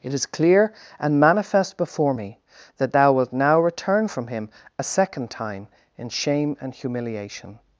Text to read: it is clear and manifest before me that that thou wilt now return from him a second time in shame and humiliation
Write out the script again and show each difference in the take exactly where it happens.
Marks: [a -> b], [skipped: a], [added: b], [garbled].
it is clear and manifest before me that [skipped: that] thou wilt now return from him a second time in shame and humiliation